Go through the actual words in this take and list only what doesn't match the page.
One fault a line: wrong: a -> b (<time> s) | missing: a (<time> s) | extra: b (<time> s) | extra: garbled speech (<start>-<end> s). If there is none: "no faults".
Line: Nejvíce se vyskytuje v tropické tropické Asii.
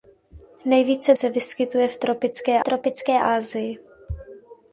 no faults